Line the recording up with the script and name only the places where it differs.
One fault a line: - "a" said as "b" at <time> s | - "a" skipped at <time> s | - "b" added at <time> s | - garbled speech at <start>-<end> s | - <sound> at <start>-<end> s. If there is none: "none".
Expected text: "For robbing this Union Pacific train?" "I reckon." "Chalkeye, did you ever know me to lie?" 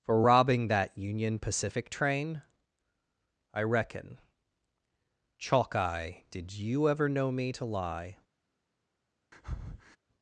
- "this" said as "that" at 0.7 s
- breath at 9.3-10.0 s